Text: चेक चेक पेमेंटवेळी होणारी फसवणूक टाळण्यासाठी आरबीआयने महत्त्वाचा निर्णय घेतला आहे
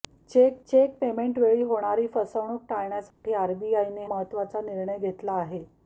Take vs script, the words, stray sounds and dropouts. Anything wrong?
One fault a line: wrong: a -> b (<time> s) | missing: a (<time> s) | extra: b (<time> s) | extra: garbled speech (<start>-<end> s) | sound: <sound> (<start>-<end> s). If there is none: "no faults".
sound: dropout (3.1-3.2 s)